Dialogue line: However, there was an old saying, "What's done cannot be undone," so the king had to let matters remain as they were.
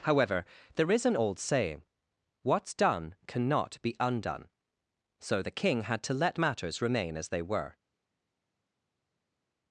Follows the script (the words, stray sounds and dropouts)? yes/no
no